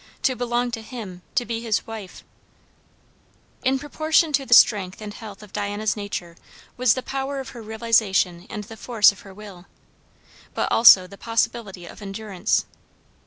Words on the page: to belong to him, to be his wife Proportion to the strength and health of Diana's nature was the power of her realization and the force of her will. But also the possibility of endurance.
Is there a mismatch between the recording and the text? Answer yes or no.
yes